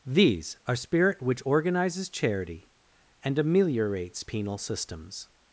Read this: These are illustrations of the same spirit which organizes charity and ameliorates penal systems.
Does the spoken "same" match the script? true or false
false